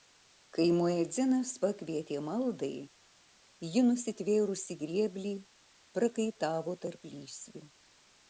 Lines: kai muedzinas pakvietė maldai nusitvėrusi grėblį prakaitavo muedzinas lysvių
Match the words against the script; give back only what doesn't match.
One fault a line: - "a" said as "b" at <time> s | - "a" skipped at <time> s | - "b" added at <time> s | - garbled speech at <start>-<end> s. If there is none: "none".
- "ji" added at 3.7 s
- "muedzinas" said as "tarp" at 6.9 s